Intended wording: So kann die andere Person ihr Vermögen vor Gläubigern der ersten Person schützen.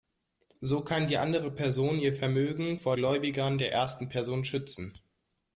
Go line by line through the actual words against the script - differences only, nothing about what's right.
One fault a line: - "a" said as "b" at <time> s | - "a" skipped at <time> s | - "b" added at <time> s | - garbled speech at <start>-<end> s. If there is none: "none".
none